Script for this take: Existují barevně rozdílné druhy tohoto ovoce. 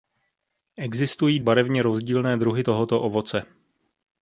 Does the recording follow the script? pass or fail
pass